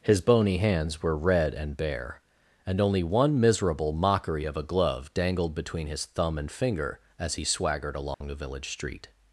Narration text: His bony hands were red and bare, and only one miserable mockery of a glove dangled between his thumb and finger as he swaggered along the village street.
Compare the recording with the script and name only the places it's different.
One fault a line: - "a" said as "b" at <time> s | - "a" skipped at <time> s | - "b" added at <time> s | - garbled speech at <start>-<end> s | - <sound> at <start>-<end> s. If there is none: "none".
- dropout at 8.1-8.2 s